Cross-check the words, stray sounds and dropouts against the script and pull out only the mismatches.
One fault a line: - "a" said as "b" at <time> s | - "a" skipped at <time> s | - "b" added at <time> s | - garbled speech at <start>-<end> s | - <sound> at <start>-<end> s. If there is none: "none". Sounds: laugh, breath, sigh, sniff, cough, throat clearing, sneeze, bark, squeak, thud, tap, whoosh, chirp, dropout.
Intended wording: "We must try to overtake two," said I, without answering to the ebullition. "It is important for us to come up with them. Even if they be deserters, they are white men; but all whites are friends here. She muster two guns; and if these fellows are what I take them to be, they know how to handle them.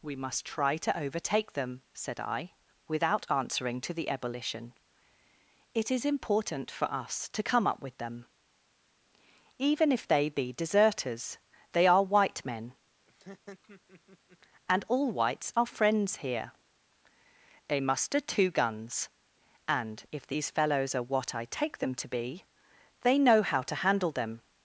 - "two" said as "them" at 1.5 s
- laugh at 13.1-14.4 s
- "but" said as "and" at 14.7 s
- "She" said as "They" at 17.7 s